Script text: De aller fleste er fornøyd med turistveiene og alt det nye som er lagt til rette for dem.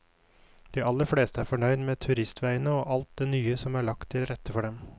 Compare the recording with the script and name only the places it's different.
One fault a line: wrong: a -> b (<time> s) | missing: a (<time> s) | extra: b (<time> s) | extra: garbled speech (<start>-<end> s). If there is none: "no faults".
no faults